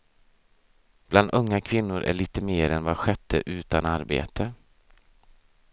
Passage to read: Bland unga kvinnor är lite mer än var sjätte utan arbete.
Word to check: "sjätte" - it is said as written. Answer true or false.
true